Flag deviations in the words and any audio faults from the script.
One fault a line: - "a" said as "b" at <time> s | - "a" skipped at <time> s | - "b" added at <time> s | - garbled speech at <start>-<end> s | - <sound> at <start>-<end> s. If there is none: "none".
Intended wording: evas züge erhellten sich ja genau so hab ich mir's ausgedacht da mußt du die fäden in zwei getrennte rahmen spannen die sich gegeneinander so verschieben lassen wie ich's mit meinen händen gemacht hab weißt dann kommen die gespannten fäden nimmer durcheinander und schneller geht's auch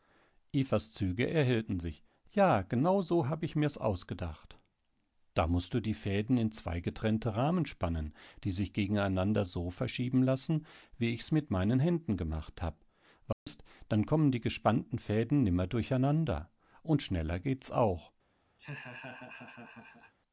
- dropout at 13.3-13.5 s
- laugh at 18.6-20.1 s